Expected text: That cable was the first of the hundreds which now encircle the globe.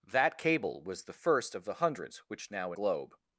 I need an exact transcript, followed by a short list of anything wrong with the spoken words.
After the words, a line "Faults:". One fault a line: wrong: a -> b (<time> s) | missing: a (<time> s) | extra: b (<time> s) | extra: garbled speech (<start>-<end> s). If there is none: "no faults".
That cable was the first of the hundreds which now globe.
Faults:
missing: encircle the (2.7 s)